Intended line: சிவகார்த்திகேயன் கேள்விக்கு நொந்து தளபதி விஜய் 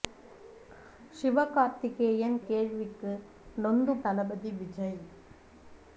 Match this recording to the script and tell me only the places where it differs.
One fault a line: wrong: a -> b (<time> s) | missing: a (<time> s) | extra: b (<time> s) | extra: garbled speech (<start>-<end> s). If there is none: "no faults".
no faults